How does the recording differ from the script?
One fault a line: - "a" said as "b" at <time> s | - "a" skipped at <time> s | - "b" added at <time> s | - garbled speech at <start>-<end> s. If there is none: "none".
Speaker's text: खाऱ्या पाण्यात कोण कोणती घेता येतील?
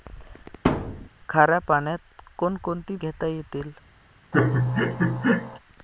none